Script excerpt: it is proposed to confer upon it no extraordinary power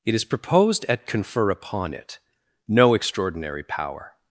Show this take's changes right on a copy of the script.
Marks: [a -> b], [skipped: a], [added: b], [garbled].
it is proposed [to -> at] confer upon it no extraordinary power